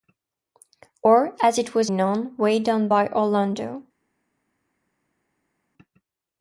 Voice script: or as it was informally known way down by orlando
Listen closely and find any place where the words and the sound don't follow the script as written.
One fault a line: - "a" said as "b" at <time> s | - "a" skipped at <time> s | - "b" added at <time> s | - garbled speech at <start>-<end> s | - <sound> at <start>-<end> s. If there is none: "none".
- "informally" skipped at 1.9 s